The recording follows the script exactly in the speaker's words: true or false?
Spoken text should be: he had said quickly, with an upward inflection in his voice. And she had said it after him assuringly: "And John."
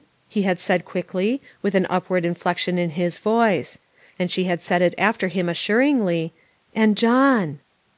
true